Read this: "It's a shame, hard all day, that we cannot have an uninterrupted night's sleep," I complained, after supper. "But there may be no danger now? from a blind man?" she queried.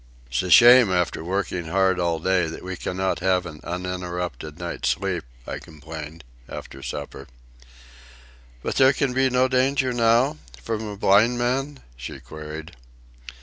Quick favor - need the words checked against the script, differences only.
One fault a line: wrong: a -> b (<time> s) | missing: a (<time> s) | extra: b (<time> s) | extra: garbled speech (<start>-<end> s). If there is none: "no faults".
extra: after working (0.9 s)
wrong: may -> can (8.9 s)